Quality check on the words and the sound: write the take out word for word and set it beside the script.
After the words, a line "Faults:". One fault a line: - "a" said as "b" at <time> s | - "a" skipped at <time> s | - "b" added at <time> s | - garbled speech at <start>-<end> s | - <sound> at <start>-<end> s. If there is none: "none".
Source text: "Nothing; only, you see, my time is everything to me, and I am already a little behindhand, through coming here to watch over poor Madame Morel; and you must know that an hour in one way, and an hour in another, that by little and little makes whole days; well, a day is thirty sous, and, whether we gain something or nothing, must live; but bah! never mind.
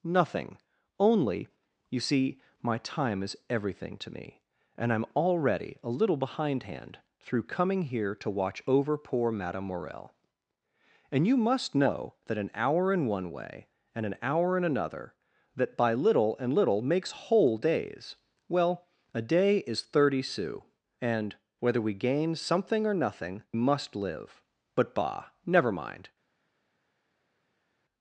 "Nothing; only, you see, my time is everything to me, and I am already a little behindhand, through coming here to watch over poor Madame Morel; and you must know that an hour in one way, and an hour in another, that by little and little makes whole days; well, a day is thirty sous, and, whether we gain something or nothing, must live; but bah! never mind.
Faults:
none